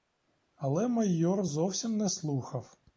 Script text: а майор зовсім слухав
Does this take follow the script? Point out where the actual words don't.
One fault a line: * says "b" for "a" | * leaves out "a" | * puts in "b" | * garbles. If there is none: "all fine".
* says "але" for "а"
* puts in "не"